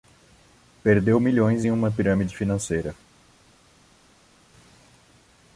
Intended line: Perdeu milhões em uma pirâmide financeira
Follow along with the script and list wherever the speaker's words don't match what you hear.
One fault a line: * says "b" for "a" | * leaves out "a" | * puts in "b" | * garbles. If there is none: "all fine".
all fine